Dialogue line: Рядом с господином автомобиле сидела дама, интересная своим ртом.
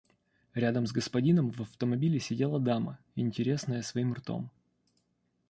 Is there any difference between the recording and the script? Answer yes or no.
yes